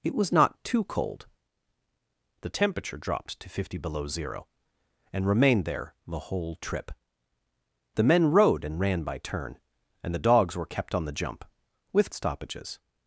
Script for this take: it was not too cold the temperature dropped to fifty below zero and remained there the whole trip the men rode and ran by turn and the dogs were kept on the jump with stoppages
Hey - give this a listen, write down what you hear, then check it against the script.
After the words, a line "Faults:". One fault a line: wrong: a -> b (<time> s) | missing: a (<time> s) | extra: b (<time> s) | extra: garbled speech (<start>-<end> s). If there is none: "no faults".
it was not too cold the temperature dropped to fifty below zero and remained there the whole trip the men rode and ran by turn and the dogs were kept on the jump with stoppages
Faults:
no faults